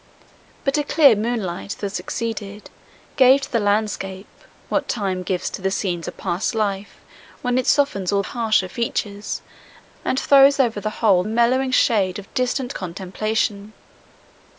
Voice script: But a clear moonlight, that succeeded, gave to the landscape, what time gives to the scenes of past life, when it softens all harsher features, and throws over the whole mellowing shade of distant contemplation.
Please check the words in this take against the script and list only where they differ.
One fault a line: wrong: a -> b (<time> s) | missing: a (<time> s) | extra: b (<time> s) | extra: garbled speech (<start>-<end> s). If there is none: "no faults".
no faults